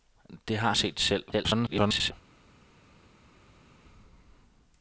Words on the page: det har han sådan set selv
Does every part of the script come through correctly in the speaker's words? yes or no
no